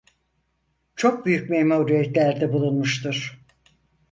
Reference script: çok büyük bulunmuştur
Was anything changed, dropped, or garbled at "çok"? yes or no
no